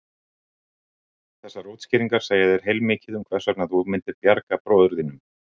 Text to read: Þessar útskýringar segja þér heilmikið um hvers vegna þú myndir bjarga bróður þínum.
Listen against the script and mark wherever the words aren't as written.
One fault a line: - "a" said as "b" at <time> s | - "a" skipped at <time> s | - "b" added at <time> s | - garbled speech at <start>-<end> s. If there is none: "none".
none